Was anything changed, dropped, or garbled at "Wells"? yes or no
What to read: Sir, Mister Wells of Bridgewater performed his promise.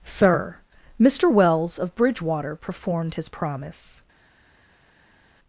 no